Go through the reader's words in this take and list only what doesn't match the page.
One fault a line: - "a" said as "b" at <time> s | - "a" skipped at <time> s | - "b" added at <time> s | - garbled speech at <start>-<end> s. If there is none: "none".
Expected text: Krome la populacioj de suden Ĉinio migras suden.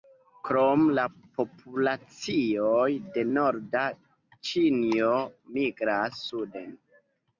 - "suden" said as "norda" at 3.4 s